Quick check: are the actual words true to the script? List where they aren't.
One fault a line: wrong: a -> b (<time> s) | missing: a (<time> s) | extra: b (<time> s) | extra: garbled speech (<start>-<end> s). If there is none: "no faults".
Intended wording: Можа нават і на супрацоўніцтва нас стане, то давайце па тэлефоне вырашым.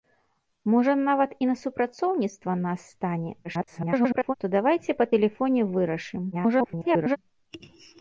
extra: garbled speech (3.4-4.3 s)
extra: garbled speech (6.3-7.2 s)